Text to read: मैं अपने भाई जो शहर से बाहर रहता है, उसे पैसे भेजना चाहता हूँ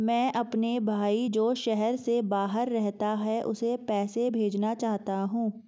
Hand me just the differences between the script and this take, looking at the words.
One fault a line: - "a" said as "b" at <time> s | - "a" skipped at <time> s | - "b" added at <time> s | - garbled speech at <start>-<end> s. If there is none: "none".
none